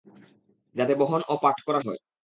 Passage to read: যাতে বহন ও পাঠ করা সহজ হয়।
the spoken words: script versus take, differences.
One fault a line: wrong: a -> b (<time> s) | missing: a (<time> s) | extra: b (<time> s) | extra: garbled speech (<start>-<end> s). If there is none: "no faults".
missing: সহজ (1.8 s)